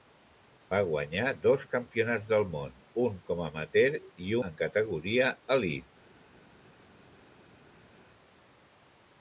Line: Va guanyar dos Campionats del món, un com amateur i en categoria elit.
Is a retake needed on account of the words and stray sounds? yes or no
no